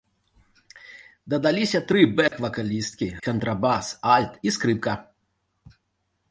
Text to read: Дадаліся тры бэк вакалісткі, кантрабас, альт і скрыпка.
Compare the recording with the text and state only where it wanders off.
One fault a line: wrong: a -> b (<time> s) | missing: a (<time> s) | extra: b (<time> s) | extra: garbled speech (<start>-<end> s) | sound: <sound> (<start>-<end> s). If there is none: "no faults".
sound: dropout (2.3-2.3 s)